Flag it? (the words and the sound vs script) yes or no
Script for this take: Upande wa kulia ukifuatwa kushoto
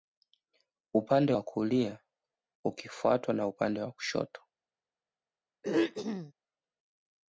yes